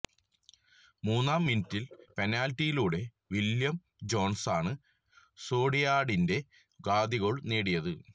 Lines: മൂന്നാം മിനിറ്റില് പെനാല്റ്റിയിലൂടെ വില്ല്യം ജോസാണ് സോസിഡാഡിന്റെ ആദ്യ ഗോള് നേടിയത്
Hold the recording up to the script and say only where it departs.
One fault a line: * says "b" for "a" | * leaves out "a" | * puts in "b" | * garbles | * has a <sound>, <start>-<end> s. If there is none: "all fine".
all fine